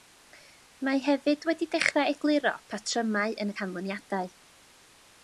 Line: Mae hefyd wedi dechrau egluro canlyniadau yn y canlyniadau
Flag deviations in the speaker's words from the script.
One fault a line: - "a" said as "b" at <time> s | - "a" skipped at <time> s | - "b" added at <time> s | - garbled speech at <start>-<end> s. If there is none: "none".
- "canlyniadau" said as "patrymau" at 2.8 s